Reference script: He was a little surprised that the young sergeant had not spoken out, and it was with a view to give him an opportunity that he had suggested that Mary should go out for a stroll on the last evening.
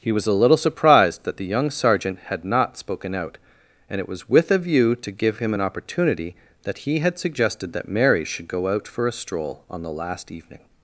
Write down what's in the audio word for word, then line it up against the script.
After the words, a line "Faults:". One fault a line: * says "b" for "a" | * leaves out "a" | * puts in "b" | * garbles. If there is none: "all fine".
He was a little surprised that the young sergeant had not spoken out, and it was with a view to give him an opportunity that he had suggested that Mary should go out for a stroll on the last evening.
Faults:
all fine